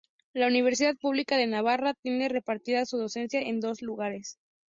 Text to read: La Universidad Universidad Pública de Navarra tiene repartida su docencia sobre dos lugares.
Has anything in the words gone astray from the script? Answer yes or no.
yes